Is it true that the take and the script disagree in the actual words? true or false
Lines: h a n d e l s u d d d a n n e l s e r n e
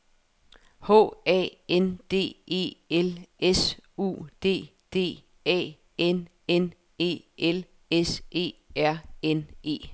true